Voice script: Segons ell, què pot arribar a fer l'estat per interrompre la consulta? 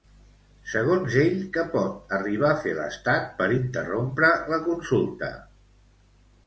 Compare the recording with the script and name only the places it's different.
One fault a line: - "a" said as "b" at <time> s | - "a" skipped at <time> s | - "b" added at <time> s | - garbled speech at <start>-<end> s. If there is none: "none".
none